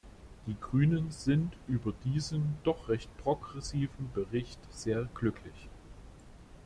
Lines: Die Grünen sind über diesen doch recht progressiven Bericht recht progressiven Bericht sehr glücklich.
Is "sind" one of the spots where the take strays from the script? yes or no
no